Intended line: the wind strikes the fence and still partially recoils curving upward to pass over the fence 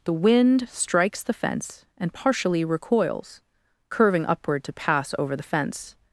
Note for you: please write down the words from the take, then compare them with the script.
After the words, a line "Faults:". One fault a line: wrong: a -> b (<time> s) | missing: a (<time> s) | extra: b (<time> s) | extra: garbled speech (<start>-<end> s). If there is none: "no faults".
the wind strikes the fence and partially recoils curving upward to pass over the fence
Faults:
missing: still (2.1 s)